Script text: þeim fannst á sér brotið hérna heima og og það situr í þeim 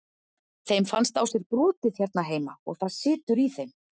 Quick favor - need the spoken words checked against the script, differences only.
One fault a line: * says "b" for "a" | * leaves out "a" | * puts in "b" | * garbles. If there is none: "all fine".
* leaves out "og"